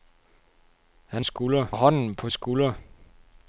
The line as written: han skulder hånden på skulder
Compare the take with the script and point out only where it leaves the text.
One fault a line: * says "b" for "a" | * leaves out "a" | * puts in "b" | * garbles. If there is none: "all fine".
all fine